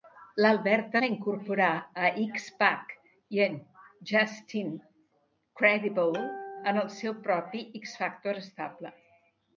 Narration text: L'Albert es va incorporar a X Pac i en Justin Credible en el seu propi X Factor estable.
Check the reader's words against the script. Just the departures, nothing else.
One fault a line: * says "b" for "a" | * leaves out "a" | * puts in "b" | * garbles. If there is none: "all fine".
* leaves out "es"